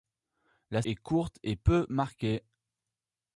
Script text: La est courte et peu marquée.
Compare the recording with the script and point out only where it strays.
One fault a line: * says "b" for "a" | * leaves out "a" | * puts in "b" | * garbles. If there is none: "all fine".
all fine